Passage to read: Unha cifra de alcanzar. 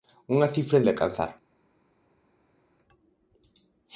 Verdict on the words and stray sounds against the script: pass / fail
pass